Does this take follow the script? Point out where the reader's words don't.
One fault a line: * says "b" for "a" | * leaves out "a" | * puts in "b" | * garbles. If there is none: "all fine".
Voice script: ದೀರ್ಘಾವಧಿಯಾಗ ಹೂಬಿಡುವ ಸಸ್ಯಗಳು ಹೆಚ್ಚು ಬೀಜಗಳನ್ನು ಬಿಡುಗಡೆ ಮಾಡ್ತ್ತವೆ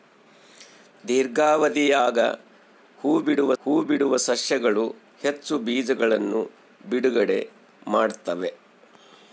* puts in "ಹೂಬಿಡುವ"